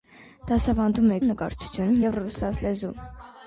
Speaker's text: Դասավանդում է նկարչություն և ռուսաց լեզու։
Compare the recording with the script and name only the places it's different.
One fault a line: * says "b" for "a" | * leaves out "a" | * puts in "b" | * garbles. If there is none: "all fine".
all fine